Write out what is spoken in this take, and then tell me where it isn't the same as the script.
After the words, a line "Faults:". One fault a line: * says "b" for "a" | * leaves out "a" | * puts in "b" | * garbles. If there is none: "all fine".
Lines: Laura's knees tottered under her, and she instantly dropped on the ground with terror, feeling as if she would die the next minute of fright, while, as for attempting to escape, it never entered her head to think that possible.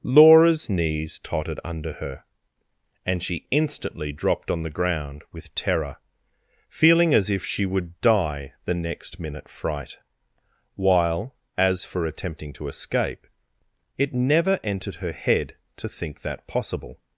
Laura's knees tottered under her, and she instantly dropped on the ground with terror, feeling as if she would die the next minute fright, while, as for attempting to escape, it never entered her head to think that possible.
Faults:
* leaves out "of"